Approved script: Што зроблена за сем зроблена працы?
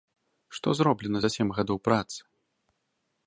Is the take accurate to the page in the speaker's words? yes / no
no